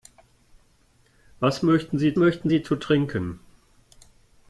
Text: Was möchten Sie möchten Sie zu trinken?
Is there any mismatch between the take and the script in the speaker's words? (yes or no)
no